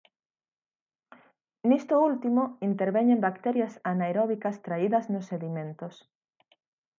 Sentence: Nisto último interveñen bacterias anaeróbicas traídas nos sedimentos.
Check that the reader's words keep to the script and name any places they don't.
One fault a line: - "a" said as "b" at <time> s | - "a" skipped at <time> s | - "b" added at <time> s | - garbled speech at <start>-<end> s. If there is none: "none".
none